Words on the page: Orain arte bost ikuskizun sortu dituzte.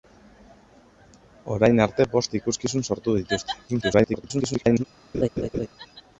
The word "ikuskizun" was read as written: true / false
true